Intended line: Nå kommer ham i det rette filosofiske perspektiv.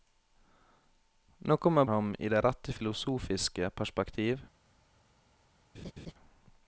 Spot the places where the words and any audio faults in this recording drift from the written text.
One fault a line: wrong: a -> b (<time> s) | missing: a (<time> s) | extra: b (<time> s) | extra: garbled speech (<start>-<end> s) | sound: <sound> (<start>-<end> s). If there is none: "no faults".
sound: laugh (5.7-6.1 s)